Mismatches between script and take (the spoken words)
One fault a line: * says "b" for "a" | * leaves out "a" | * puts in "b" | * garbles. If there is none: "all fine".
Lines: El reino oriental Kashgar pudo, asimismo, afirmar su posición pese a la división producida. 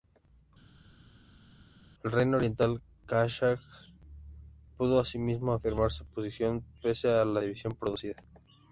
all fine